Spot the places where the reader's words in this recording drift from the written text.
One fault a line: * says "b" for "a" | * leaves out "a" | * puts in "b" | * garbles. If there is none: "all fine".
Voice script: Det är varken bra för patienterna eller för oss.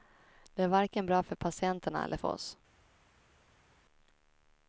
all fine